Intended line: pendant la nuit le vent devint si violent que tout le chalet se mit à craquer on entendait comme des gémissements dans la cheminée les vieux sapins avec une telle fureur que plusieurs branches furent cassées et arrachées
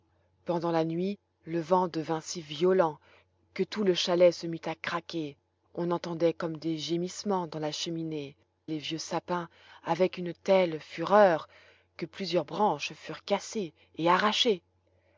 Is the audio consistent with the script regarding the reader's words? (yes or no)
yes